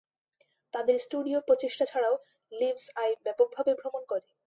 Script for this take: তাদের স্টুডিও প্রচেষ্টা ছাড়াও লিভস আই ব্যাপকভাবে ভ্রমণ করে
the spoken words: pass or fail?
pass